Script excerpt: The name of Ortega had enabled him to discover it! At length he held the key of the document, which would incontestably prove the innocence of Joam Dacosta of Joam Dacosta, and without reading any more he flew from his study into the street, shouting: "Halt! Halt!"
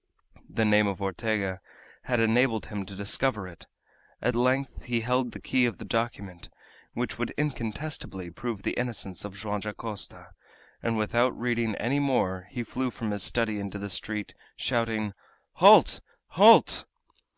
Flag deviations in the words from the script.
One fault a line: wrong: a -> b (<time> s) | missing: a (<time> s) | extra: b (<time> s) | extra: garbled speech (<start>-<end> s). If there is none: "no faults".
missing: of Joam Dacosta (10.3 s)